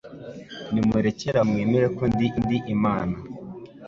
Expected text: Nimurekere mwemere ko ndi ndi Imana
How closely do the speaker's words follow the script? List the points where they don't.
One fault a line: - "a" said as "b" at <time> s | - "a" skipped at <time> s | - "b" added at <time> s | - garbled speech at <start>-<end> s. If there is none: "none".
none